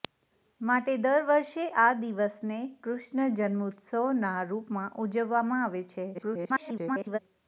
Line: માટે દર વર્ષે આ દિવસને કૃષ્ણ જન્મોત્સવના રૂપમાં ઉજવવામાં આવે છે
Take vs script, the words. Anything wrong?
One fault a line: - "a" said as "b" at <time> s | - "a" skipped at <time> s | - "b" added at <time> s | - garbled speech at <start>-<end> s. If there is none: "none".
- garbled speech at 6.1-7.2 s